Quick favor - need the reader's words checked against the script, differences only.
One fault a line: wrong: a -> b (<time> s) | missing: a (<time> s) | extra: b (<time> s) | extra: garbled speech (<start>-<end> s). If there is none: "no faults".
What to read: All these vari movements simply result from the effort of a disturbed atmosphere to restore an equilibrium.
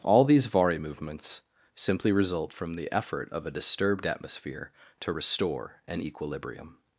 no faults